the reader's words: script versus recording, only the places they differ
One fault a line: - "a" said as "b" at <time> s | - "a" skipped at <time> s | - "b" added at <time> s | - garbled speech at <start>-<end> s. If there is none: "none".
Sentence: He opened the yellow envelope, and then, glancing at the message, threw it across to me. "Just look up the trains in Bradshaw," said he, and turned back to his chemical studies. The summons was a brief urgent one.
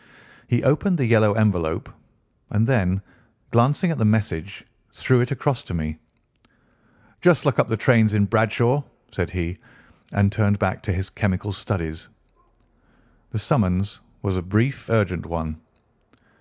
none